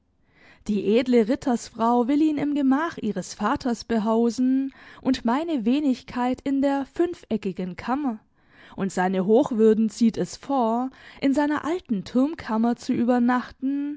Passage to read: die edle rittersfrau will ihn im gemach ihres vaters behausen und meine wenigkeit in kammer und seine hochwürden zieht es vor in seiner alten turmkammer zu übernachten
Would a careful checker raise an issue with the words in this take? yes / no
yes